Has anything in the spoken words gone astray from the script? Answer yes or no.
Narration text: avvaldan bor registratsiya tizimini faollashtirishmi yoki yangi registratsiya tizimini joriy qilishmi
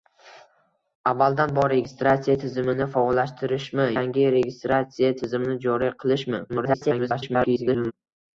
yes